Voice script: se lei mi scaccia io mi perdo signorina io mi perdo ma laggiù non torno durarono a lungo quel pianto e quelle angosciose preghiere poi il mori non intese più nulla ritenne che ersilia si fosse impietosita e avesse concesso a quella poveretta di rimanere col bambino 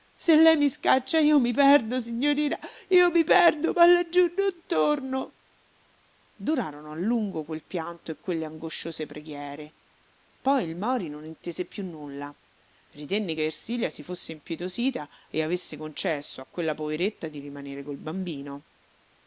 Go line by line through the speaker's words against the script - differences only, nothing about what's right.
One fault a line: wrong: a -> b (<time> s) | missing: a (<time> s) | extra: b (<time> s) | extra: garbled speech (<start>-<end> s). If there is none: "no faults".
no faults